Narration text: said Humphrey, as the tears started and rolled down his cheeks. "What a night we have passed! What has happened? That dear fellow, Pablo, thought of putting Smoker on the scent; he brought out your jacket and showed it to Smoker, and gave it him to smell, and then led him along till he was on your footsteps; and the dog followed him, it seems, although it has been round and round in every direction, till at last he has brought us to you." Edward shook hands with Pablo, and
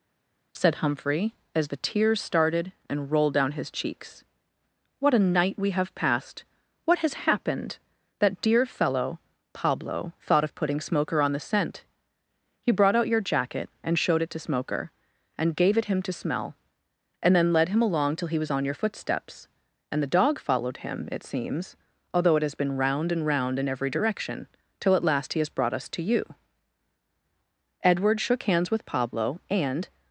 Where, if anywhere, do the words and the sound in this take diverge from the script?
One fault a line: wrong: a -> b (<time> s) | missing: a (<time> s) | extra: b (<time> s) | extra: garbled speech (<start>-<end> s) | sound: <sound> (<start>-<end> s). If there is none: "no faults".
no faults